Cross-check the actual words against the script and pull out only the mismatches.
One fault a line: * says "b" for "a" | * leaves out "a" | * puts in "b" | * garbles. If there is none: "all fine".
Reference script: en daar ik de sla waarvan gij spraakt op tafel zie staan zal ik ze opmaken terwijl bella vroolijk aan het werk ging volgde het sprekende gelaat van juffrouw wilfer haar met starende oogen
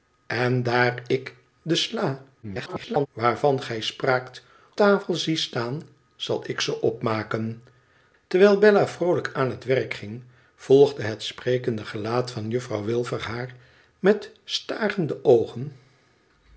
* garbles
* leaves out "op"